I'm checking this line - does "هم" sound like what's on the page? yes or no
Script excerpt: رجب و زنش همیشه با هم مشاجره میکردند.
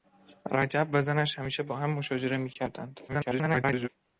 yes